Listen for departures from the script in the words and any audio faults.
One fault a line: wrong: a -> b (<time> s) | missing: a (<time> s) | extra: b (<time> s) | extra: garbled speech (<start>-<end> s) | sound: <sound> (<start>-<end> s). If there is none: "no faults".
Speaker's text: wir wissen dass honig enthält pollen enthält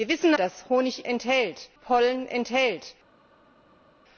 no faults